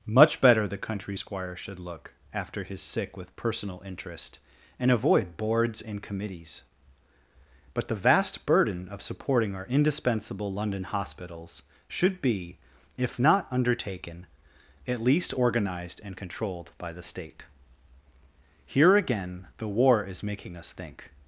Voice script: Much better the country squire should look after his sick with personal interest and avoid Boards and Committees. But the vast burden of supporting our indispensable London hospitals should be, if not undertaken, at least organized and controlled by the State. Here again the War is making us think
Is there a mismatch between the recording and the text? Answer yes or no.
no